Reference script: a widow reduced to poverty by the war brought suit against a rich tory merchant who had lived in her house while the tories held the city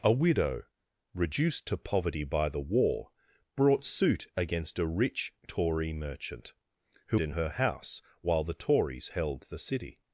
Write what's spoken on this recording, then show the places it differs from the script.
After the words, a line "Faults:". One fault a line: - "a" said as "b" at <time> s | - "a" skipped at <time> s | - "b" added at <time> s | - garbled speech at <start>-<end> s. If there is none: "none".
a widow reduced to poverty by the war brought suit against a rich tory merchant who in her house while the tories held the city
Faults:
- "had lived" skipped at 7.2 s